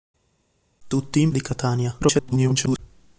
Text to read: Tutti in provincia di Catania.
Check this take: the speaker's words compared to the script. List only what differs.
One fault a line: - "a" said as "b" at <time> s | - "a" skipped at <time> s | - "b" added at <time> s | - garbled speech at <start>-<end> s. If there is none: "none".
- "provincia" skipped at 1.3 s
- garbled speech at 2.0-2.8 s